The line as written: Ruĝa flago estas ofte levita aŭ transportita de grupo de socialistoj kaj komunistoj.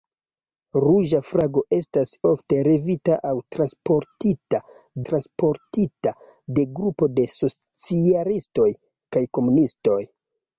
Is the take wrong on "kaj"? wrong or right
right